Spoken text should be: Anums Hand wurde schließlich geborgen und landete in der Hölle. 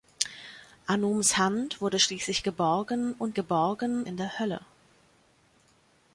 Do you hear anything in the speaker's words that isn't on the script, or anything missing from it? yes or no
yes